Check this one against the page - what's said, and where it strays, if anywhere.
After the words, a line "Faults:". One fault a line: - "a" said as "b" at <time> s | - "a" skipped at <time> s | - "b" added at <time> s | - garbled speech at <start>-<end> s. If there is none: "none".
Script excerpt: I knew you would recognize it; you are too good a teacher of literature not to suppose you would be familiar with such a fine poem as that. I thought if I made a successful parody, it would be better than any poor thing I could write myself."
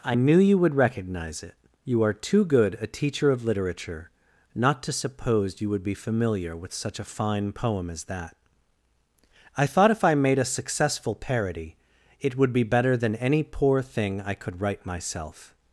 I knew you would recognize it; you are too good a teacher of literature not to suppose you would be familiar with such a fine poem as that. I thought if I made a successful parody, it would be better than any poor thing I could write myself."
Faults:
none